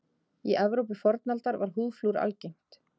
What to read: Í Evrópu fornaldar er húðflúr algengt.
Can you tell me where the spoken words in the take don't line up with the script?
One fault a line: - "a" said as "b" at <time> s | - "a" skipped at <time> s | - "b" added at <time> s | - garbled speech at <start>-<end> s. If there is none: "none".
- "er" said as "var" at 1.6 s